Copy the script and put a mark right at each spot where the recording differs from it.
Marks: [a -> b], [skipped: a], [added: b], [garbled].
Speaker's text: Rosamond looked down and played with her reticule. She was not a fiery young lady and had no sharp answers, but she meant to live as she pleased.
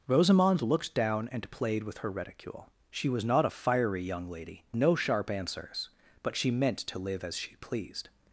Rosamond looked down and played with her reticule. She was not a fiery young lady [skipped: and had] no sharp answers, but she meant to live as she pleased.